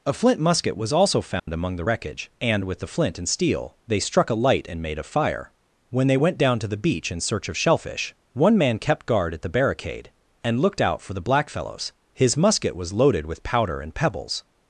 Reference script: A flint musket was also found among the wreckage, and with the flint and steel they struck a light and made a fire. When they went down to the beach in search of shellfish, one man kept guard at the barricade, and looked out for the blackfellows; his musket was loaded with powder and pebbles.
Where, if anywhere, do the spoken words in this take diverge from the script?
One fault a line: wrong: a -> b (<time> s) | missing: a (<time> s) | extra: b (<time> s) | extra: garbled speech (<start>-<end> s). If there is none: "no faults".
no faults